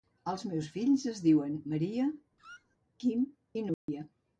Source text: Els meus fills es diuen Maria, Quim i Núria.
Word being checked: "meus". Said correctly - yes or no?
yes